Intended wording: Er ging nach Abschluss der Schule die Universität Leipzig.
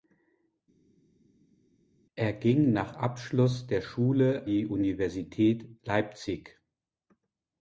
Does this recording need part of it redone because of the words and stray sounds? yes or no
no